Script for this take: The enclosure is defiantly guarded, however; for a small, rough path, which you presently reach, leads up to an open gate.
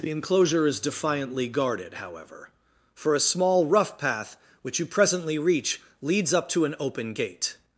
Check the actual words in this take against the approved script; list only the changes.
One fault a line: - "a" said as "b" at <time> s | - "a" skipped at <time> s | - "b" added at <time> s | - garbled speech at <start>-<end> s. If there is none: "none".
none